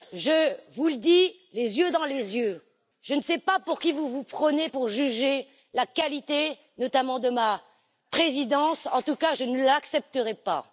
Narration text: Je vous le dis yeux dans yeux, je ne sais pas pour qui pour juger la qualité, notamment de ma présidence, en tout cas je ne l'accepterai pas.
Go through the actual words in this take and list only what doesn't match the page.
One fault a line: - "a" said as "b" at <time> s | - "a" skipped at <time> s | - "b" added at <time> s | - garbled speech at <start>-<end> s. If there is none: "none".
- "les" added at 1.5 s
- "les" added at 2.0 s
- "vous vous prenez" added at 3.9 s